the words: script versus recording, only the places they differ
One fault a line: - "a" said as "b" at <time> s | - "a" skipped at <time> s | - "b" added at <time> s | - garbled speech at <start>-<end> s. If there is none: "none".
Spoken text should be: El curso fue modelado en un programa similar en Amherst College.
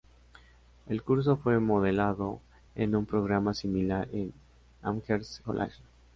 none